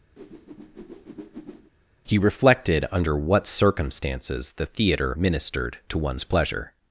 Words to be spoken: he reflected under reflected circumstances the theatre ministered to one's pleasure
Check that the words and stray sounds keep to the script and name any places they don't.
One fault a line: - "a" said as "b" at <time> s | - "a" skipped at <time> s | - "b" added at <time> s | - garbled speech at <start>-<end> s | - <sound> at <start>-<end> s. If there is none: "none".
- whoosh at 0.2-1.7 s
- "reflected" said as "what" at 3.2 s